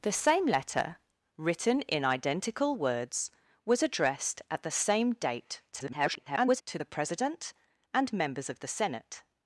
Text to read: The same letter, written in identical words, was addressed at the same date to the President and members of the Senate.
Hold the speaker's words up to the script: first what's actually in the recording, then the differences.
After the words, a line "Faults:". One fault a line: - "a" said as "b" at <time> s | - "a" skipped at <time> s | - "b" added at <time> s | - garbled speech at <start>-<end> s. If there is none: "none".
The same letter, written in identical words, was addressed at the same date [garbled] to the President and members of the Senate.
Faults:
- garbled speech at 5.7-6.6 s